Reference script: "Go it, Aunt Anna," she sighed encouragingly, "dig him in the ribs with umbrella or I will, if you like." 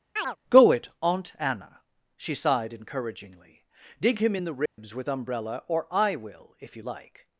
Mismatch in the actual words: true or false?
false